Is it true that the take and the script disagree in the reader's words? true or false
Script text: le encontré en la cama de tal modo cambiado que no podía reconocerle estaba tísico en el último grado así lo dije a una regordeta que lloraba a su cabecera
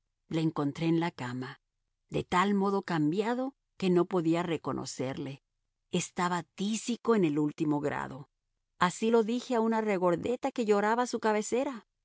false